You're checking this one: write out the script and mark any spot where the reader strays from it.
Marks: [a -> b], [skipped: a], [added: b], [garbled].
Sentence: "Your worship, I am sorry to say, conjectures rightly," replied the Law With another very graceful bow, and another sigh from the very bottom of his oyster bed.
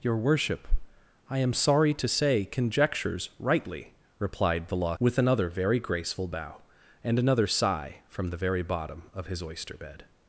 "Your worship, I am sorry to say, conjectures rightly," replied the Law With another very graceful bow, and another sigh from the very bottom of his oyster bed.